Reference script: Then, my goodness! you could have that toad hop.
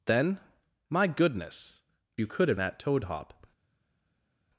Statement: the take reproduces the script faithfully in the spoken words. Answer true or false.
true